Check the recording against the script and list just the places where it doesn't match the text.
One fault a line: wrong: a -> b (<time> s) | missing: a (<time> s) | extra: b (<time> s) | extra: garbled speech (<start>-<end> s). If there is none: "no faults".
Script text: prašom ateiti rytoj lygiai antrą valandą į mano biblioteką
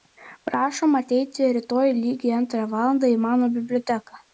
no faults